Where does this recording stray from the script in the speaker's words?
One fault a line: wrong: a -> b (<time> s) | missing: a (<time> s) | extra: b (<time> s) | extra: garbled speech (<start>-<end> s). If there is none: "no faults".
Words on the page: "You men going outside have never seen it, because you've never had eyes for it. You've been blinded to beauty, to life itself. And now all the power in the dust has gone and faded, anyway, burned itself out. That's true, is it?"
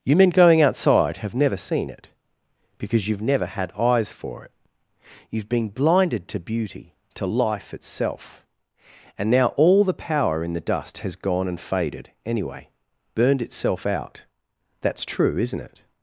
wrong: is -> isn't (15.4 s)